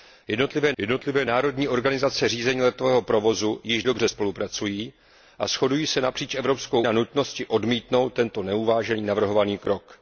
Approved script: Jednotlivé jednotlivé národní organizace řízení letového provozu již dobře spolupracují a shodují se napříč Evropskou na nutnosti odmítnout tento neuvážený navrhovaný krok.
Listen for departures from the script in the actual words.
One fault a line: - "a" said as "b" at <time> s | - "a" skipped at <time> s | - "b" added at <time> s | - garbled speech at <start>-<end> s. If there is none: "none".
none